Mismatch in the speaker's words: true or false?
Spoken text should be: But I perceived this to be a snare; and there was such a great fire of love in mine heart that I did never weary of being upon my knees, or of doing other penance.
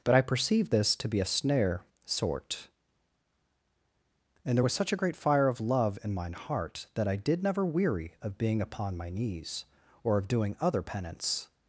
true